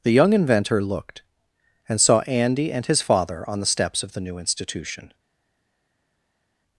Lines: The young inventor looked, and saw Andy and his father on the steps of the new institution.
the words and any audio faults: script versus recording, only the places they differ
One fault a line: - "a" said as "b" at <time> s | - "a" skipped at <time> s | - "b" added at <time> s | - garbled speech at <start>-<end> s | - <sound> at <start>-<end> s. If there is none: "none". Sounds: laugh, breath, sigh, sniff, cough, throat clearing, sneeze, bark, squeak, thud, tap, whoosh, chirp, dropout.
none